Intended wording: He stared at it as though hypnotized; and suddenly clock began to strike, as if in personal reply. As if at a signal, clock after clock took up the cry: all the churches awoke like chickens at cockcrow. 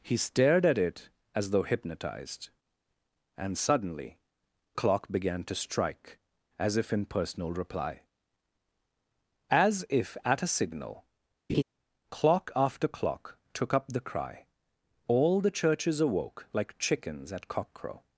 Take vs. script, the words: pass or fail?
pass